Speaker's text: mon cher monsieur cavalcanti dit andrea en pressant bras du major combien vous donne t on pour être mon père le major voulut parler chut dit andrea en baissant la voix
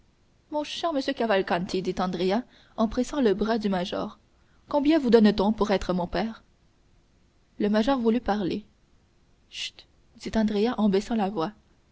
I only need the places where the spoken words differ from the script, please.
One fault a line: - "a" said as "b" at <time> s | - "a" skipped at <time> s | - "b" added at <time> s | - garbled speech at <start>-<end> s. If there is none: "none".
- "le" added at 3.2 s